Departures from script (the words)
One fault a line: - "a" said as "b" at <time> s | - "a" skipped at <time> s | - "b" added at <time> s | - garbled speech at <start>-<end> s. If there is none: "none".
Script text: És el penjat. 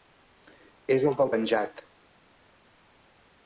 - "del" added at 1.2 s